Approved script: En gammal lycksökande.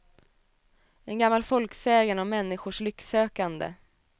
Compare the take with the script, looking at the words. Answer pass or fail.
fail